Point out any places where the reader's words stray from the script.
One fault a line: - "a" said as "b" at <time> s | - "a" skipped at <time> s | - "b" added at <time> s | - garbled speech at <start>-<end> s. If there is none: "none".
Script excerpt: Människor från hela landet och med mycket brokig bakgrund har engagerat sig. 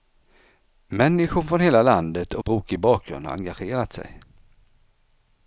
- "med mycket" skipped at 2.4 s